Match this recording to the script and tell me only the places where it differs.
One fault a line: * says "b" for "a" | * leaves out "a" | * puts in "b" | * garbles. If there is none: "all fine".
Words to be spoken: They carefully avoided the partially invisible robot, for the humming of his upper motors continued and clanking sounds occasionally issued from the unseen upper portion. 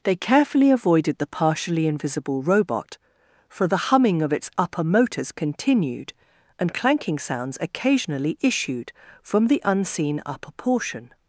* says "its" for "his"